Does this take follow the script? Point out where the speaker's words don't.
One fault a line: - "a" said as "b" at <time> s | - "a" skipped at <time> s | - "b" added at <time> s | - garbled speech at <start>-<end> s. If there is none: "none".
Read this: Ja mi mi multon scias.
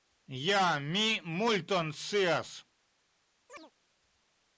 - "mi" skipped at 1.2 s